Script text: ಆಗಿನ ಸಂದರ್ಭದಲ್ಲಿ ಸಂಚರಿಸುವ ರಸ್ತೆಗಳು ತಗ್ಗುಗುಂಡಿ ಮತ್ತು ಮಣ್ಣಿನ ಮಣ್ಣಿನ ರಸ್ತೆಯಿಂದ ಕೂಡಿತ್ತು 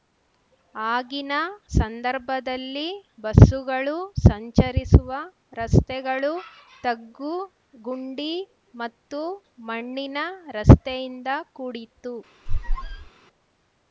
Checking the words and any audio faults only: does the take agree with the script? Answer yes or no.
no